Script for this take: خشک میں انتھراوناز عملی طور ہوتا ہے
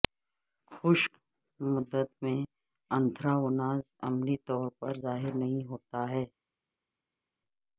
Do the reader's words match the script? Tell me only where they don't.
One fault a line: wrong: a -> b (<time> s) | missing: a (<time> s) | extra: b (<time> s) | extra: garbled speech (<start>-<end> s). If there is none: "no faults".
extra: مدت (1.6 s)
extra: پر ظاہر نہیں (4.8 s)